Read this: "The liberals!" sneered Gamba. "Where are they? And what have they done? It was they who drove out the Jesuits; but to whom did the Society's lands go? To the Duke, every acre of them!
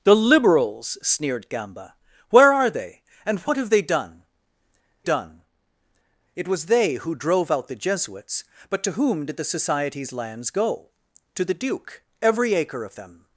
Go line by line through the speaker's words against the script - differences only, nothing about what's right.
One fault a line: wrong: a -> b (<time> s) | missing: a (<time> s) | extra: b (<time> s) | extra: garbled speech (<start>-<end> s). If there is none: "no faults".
extra: done (5.0 s)